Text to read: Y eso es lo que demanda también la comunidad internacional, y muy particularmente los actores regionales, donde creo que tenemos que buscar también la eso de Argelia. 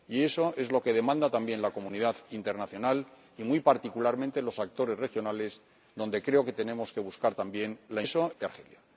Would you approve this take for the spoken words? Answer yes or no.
yes